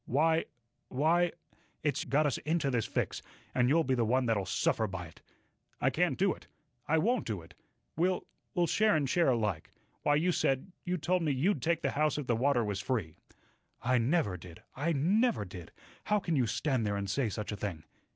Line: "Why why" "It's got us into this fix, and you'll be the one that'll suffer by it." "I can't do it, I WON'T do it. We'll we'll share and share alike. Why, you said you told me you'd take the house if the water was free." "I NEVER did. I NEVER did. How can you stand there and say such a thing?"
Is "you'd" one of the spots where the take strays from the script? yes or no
no